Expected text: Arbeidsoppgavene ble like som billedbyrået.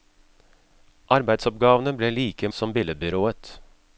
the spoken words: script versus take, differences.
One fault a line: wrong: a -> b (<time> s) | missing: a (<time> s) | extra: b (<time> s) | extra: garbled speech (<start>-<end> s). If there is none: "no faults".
no faults